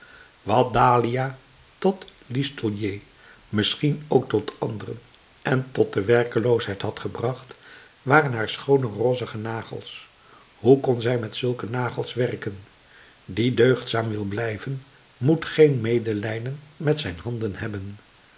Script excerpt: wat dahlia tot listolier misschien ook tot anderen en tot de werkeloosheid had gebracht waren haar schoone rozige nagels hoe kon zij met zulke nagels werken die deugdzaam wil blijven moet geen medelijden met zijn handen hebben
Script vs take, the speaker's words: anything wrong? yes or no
no